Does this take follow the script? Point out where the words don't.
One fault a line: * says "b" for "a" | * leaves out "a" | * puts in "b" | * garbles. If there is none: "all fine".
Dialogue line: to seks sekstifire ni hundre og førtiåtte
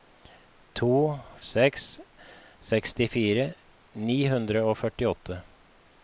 all fine